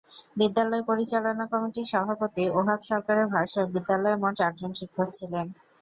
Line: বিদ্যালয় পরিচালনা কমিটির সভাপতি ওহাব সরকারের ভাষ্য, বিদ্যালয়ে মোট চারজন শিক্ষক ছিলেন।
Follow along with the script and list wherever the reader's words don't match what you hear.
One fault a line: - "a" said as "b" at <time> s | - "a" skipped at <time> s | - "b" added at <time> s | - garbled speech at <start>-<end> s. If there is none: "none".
none